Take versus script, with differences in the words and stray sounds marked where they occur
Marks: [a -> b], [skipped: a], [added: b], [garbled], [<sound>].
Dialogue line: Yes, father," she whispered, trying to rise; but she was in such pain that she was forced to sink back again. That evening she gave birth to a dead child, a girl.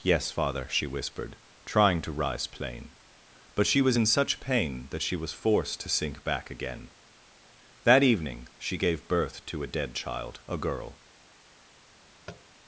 Yes, father," she whispered, trying to rise; [added: plain] but she was in such pain that she was forced to sink back again. That evening she gave birth to a dead child, a girl. [tap]